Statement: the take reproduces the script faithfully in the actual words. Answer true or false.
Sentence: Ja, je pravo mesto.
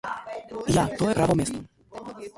false